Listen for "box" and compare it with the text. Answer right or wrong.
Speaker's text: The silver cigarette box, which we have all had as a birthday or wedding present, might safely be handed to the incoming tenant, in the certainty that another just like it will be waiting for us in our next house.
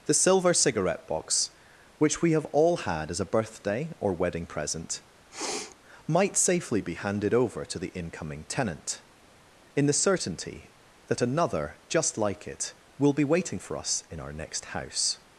right